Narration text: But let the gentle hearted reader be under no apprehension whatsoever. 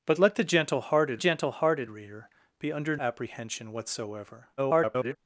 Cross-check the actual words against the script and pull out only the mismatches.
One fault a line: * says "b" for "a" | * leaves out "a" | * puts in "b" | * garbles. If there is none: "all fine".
* puts in "gentle hearted"
* leaves out "no"
* garbles